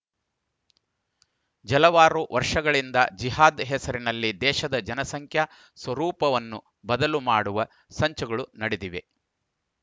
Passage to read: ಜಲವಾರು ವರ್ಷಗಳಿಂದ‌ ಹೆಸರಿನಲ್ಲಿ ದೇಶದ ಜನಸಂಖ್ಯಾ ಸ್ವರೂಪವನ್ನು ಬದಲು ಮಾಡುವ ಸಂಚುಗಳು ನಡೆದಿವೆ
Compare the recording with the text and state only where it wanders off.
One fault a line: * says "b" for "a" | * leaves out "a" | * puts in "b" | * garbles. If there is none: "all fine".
* puts in "ಜಿಹಾದ್"